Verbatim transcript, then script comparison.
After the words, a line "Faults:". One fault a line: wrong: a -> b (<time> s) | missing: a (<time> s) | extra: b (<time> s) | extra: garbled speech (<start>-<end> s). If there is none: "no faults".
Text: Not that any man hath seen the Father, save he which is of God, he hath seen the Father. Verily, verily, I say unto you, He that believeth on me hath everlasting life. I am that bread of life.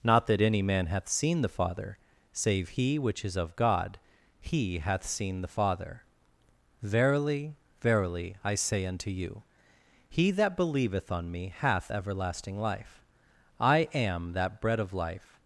Not that any man hath seen the Father, save he which is of God, he hath seen the Father. Verily, verily, I say unto you, He that believeth on me hath everlasting life. I am that bread of life.
Faults:
no faults